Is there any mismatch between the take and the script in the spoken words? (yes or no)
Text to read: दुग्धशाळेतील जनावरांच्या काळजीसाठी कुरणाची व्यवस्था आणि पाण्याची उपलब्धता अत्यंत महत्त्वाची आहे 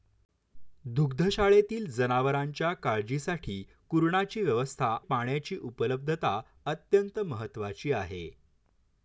yes